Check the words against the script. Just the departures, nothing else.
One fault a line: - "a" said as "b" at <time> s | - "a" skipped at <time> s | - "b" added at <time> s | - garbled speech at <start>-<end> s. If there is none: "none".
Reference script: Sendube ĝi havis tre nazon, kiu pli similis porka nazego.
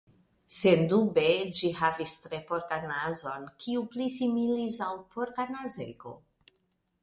- "porkan" added at 2.5 s
- "al" added at 4.9 s